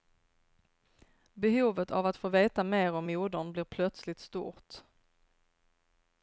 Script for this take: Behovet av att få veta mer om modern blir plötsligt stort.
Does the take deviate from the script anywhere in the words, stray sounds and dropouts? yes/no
no